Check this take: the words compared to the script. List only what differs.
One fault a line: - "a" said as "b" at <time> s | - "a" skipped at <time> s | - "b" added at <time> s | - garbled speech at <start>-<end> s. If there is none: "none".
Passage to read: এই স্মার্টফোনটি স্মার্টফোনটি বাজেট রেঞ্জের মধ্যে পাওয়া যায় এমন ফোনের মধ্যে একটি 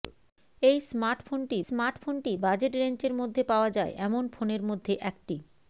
none